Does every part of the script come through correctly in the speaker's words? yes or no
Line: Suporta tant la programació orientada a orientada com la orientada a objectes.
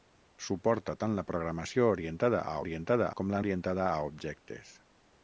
yes